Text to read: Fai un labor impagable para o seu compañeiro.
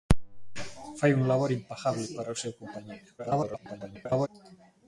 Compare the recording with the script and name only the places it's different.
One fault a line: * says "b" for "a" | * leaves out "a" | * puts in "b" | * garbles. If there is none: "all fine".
* garbles